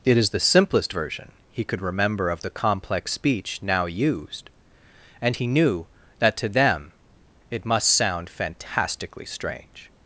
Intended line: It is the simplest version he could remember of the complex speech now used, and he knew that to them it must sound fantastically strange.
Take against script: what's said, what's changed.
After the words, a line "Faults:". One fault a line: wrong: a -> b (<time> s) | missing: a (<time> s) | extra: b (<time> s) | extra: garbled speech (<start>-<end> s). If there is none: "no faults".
It is the simplest version he could remember of the complex speech now used, and he knew that to them it must sound fantastically strange.
Faults:
no faults